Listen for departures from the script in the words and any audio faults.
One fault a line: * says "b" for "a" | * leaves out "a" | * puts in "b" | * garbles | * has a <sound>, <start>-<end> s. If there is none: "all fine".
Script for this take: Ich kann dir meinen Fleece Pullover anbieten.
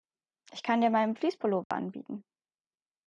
* has a dropout, 1.6-1.7 s